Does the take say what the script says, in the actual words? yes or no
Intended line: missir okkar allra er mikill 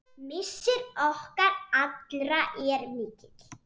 yes